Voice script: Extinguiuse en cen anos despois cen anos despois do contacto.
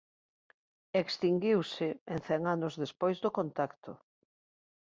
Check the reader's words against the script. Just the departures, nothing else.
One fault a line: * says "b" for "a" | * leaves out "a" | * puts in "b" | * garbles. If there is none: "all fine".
* leaves out "cen anos despois"